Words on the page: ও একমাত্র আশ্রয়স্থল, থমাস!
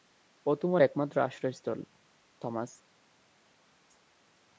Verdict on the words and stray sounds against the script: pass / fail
fail